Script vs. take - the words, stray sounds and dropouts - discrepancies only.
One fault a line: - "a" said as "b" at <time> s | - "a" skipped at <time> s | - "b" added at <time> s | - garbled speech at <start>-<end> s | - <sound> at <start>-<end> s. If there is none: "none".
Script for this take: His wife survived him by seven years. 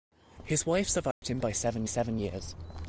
- dropout at 1.1-1.2 s
- "seven" added at 1.8 s